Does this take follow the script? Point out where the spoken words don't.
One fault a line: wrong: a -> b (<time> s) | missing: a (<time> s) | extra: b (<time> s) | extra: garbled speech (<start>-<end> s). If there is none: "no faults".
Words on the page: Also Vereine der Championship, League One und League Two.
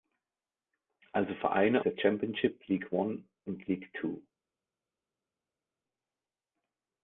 no faults